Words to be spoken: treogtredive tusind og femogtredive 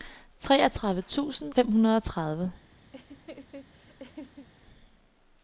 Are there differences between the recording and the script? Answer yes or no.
yes